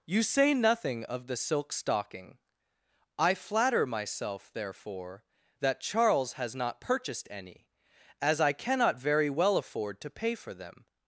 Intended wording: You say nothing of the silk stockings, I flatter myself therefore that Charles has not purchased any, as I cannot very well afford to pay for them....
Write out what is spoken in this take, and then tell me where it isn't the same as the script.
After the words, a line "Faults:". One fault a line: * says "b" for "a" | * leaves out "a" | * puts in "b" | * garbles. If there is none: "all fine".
You say nothing of the silk stocking, I flatter myself therefore that Charles has not purchased any, as I cannot very well afford to pay for them....
Faults:
* says "stocking" for "stockings"